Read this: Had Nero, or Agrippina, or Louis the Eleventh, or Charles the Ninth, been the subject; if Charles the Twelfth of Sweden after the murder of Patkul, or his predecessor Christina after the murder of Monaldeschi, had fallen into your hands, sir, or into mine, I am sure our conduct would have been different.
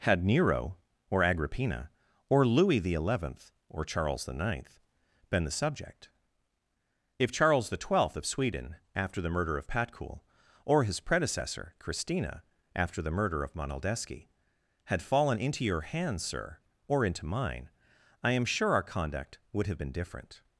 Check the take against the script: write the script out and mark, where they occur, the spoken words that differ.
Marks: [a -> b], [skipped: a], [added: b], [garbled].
Had Nero, or Agrippina, or Louis the Eleventh, or Charles the Ninth, been the subject; if Charles the Twelfth of Sweden after the murder of Patkul, or his predecessor Christina after the murder of Monaldeschi, had fallen into your hands, sir, or into mine, I am sure our conduct would have been different.